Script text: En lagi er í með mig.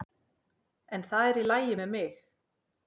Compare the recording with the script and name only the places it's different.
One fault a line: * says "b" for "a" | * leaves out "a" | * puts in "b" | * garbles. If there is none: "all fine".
* says "það" for "lagi"
* puts in "lagi"